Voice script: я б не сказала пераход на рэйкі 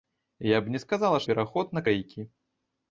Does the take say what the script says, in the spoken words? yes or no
yes